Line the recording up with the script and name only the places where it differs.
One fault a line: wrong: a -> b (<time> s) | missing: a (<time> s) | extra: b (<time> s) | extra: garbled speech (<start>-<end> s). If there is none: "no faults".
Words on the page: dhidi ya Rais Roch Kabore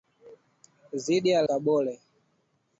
missing: Rais Roch (1.4 s)